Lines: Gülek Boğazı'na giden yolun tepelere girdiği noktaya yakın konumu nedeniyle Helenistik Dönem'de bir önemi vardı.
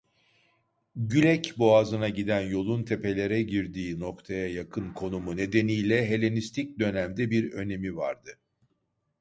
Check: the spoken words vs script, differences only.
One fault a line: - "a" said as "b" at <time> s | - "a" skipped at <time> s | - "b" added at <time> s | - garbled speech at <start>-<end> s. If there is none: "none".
none